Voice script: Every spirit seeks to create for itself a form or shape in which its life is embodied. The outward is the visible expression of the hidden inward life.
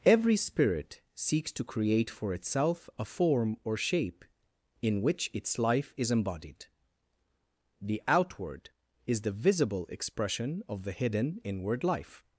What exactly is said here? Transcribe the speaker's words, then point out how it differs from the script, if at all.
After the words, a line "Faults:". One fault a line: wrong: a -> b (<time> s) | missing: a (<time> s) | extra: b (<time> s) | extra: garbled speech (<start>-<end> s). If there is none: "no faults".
Every spirit seeks to create for itself a form or shape in which its life is embodied. The outward is the visible expression of the hidden inward life.
Faults:
no faults